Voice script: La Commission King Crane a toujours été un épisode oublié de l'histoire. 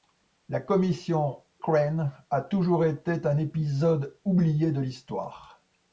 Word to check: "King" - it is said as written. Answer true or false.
false